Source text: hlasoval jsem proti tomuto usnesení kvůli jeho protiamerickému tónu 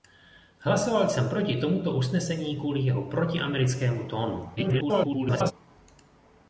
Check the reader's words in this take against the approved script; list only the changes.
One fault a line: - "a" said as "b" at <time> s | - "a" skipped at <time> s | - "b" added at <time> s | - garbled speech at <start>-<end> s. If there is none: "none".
- garbled speech at 4.6-5.5 s